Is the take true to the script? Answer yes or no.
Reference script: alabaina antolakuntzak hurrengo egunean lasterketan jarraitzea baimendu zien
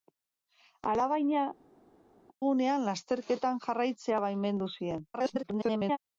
no